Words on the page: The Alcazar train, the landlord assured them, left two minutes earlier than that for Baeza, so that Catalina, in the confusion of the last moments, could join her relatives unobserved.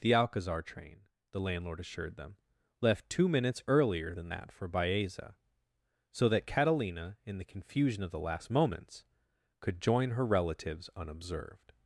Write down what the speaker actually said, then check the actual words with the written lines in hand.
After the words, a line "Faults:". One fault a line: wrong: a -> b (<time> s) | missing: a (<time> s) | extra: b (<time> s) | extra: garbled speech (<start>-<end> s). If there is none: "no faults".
The Alcazar train, the landlord assured them, left two minutes earlier than that for Baeza, so that Catalina, in the confusion of the last moments, could join her relatives unobserved.
Faults:
no faults